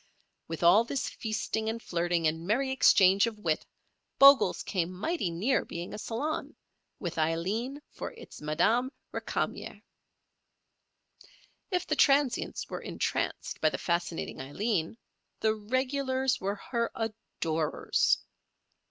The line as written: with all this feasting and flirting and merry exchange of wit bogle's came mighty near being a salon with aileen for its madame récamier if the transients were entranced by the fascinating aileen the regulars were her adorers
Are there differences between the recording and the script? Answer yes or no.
no